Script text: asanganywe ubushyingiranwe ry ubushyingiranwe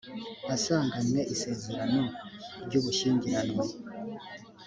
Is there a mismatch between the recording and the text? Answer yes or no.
yes